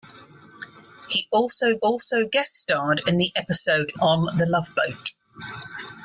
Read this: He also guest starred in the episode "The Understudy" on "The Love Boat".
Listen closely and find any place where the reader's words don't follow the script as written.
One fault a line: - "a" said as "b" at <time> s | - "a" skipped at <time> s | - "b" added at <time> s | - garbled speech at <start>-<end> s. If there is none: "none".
- "also" added at 1.8 s
- "The Understudy" skipped at 3.9 s